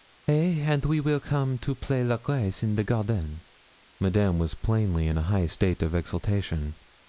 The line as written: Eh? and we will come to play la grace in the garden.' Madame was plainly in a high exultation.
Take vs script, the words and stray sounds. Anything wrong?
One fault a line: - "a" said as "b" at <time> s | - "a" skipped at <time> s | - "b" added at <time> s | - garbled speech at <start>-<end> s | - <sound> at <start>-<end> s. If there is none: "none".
- "state of" added at 5.4 s